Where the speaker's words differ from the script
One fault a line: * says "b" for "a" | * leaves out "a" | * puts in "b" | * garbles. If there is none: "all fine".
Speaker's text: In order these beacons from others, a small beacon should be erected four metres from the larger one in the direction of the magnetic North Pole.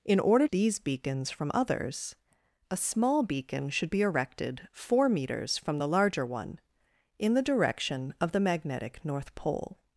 all fine